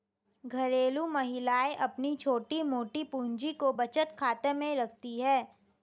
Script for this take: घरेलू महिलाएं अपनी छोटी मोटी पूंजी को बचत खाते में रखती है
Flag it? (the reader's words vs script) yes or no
no